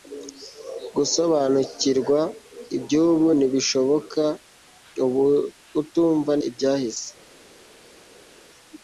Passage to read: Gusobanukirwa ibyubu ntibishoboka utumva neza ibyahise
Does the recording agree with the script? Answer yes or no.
no